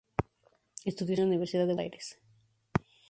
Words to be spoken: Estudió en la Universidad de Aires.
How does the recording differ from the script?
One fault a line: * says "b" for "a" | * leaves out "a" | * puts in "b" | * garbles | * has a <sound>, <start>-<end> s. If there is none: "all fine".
all fine